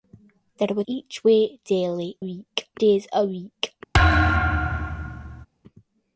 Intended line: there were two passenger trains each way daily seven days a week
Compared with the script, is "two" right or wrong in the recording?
wrong